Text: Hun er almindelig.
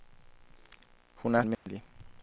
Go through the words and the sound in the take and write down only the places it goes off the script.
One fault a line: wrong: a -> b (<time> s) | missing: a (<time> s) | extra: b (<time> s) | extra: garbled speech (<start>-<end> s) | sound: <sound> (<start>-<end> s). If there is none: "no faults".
sound: dropout (1.5-1.7 s)